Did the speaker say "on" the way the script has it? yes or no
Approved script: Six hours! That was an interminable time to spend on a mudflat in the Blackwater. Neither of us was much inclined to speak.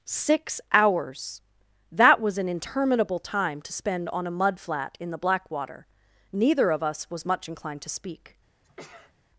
yes